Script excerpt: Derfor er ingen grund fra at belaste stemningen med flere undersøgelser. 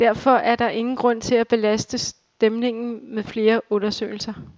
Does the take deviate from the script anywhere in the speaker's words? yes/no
yes